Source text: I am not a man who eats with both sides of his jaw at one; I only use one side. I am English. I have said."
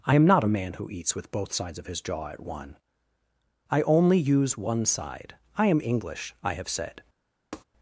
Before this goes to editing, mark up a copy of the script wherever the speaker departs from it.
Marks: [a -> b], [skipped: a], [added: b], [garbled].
I am not a man who eats with both sides of his jaw at one; I only use one side. I am English. I have said."